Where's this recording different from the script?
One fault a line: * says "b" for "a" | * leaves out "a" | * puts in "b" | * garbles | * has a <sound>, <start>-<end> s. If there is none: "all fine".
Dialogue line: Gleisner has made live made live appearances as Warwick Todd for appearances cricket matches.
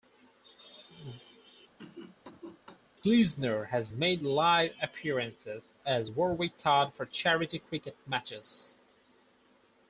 * has a cough, 1.8-2.8 s
* leaves out "made live"
* says "charity" for "appearances"